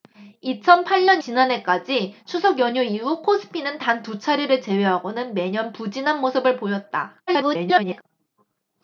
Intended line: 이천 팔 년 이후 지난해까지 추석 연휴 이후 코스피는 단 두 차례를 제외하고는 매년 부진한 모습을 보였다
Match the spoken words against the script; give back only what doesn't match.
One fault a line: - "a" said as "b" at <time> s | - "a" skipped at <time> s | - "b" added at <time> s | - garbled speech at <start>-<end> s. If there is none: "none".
- "이후" skipped at 1.2 s
- garbled speech at 7.3-8.0 s